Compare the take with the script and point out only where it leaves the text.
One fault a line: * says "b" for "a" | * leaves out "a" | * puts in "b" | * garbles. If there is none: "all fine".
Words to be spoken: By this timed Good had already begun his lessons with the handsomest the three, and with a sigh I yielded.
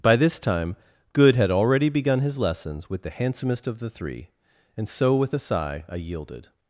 * says "time" for "timed"
* puts in "of"
* puts in "so"